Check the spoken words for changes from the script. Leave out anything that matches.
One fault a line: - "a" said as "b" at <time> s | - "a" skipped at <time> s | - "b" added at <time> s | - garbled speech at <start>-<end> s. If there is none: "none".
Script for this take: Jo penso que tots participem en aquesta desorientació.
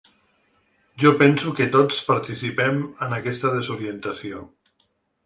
none